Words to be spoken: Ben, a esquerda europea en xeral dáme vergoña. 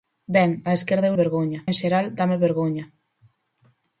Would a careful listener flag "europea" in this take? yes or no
yes